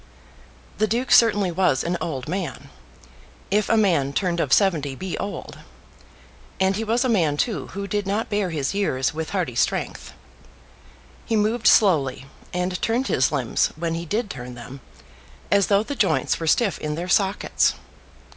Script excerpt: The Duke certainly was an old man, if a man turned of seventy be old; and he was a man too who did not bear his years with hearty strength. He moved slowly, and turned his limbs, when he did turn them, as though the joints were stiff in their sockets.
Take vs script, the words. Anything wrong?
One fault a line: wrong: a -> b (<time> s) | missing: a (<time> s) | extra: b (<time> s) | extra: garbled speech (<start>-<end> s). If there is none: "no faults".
no faults